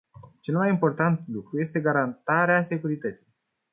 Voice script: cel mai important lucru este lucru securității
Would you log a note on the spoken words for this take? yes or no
yes